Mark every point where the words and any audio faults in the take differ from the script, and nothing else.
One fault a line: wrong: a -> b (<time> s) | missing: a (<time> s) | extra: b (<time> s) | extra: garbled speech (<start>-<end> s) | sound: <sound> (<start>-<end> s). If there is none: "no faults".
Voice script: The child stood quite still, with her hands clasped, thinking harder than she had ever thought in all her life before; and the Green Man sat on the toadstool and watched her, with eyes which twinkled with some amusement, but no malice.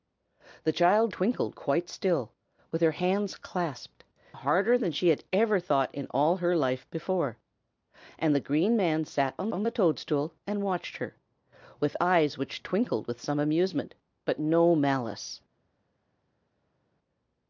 wrong: stood -> twinkled (1.1 s)
missing: thinking (4.0 s)
extra: on (9.5 s)